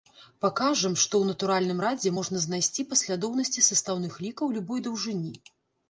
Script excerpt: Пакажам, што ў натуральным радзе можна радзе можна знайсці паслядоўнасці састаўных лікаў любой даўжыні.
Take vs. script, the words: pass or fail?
fail